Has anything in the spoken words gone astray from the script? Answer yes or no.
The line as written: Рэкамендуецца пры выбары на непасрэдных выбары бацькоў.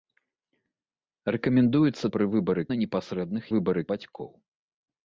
no